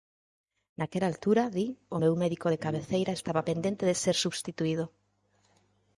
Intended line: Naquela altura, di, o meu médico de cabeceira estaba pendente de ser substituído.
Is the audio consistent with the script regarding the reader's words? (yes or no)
yes